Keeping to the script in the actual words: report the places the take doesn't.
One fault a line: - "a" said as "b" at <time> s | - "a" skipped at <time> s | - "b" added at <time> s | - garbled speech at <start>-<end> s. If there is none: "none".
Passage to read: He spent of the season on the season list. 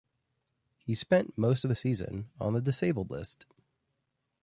- "most" added at 1.4 s
- "season" said as "disabled" at 2.6 s